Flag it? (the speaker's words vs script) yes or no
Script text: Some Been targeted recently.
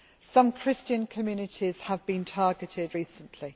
yes